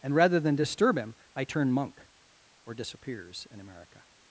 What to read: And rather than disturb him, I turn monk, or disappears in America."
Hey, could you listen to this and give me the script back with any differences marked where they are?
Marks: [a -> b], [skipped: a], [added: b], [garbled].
And rather than disturb him, I turn monk, or disappears in America."